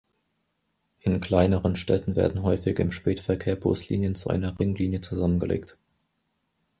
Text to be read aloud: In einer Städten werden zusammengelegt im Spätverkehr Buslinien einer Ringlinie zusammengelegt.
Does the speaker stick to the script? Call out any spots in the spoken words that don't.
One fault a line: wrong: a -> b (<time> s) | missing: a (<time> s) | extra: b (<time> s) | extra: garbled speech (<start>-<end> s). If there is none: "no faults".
wrong: einer -> kleineren (1.2 s)
wrong: zusammengelegt -> häufig (2.4 s)
extra: zu (4.2 s)